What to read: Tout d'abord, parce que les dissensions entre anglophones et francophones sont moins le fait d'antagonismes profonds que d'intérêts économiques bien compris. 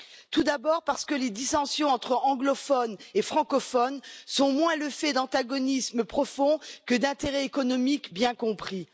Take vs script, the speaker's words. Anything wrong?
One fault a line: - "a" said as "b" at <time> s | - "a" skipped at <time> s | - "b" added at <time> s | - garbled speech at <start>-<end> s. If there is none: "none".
none